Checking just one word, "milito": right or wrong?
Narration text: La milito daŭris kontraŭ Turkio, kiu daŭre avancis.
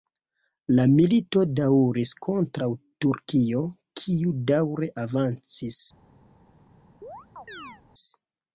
right